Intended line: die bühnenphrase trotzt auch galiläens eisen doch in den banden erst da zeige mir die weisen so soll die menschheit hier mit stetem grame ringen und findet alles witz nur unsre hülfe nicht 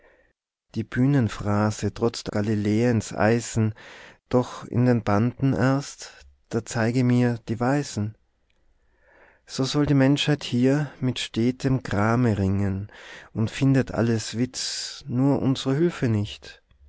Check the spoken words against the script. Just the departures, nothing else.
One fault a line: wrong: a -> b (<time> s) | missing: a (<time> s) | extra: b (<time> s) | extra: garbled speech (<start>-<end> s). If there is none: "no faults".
missing: auch (2.3 s)